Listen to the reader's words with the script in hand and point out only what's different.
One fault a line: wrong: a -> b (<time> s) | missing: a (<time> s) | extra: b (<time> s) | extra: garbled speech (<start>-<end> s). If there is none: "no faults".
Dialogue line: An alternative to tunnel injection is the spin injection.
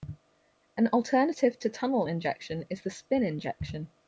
no faults